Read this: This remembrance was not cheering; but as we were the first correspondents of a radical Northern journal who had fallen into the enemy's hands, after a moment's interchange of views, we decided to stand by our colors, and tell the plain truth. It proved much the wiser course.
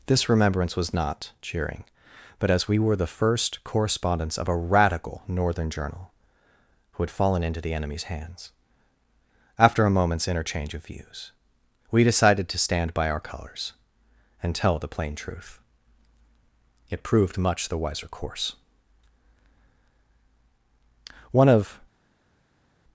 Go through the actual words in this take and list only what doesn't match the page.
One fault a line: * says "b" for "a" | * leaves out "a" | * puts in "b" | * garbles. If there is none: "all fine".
* puts in "One of"